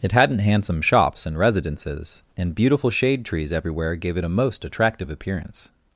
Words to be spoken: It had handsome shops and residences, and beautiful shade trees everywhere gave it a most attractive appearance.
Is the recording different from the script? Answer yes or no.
yes